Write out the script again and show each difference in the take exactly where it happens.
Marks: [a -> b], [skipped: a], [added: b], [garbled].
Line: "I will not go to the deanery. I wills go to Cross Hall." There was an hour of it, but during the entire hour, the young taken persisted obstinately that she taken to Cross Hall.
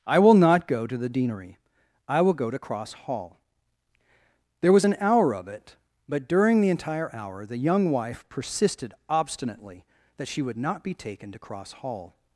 "I will not go to the deanery. I [wills -> will] go to Cross Hall." There was an hour of it, but during the entire hour, the young [taken -> wife] persisted obstinately that she [added: would not be] taken to Cross Hall.